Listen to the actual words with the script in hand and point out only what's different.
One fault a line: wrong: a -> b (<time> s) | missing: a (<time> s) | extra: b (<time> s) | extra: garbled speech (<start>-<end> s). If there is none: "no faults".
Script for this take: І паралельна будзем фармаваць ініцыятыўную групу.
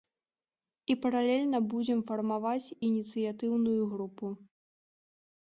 no faults